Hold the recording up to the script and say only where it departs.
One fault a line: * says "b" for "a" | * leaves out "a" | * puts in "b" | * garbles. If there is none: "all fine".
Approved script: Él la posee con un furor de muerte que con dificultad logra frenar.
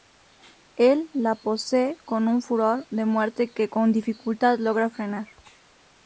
all fine